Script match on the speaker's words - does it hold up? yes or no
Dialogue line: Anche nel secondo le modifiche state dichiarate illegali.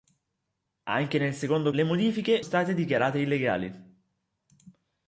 yes